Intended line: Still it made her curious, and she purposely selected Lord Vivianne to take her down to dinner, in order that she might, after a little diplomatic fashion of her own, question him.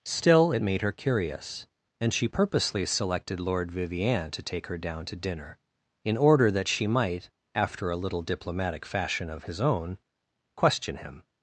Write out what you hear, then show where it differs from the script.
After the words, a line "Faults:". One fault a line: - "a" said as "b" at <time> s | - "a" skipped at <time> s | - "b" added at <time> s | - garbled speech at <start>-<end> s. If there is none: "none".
Still it made her curious, and she purposely selected Lord Vivianne to take her down to dinner, in order that she might, after a little diplomatic fashion of his own, question him.
Faults:
- "her" said as "his" at 9.4 s